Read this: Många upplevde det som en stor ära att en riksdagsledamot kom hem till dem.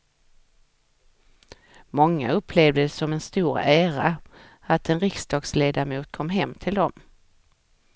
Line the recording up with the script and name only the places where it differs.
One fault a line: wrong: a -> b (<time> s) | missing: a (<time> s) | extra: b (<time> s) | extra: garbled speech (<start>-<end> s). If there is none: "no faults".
no faults